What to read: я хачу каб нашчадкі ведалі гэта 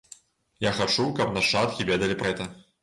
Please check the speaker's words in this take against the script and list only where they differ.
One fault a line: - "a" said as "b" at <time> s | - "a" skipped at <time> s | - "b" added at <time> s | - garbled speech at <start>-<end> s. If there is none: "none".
none